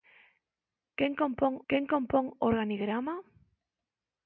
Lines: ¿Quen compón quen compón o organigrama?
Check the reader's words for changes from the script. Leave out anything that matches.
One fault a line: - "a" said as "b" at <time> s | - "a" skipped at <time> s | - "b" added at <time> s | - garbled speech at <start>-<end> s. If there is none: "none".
none